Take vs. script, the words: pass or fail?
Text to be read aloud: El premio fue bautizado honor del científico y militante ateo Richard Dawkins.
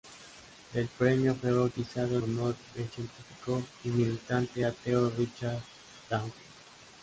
pass